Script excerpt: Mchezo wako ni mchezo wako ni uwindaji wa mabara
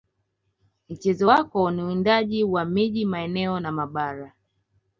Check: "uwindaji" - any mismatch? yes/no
yes